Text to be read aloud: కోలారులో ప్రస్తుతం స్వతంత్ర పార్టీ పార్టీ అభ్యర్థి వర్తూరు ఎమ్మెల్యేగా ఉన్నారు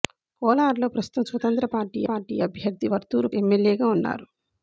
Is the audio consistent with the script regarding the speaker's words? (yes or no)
yes